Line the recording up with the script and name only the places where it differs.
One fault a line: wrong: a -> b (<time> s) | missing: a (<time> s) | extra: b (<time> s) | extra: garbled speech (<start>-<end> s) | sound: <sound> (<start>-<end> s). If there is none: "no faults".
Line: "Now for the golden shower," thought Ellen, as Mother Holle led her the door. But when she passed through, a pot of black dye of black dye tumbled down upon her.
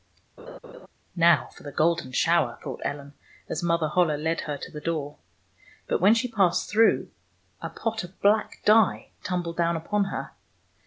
sound: laugh (0.4-0.9 s)
extra: to (4.6 s)
missing: of black dye (9.1 s)